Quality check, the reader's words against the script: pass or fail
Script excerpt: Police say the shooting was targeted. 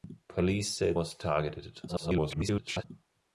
fail